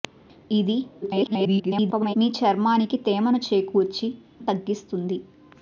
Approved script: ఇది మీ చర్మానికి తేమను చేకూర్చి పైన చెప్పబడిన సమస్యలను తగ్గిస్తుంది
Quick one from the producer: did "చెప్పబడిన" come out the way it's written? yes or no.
no